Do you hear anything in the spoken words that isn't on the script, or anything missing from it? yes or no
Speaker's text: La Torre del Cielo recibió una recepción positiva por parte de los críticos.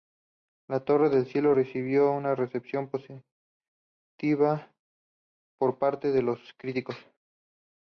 no